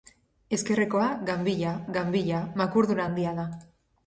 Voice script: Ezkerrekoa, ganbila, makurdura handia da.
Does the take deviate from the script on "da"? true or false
false